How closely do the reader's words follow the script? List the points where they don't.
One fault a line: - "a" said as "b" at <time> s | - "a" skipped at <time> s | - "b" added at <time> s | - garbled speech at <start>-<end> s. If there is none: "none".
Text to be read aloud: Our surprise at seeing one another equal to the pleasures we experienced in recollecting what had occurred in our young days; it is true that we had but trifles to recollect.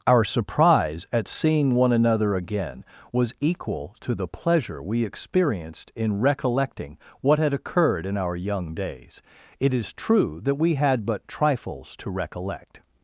- "again was" added at 2.4 s
- "pleasures" said as "pleasure" at 4.3 s